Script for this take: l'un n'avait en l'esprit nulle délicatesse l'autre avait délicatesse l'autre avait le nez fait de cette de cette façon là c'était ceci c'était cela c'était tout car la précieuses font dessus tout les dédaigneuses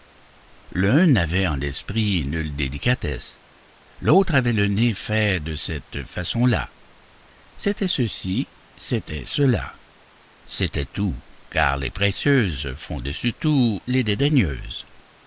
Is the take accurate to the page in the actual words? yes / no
no